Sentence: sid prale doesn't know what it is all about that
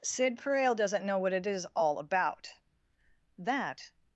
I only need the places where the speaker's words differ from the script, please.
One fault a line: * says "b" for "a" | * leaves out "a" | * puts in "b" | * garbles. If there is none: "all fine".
all fine